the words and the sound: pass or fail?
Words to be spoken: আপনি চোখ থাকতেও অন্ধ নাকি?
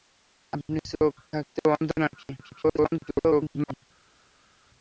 fail